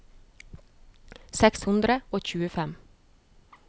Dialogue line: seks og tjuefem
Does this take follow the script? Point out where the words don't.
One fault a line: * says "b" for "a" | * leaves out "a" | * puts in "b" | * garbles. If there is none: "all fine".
* puts in "hundre"